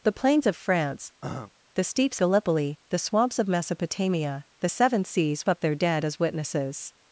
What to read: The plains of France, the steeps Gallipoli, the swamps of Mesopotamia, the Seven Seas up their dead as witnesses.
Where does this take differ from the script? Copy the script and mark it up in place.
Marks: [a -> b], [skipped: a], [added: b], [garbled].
The plains of France, the steeps Gallipoli, the swamps of Mesopotamia, the Seven Seas up their dead as witnesses.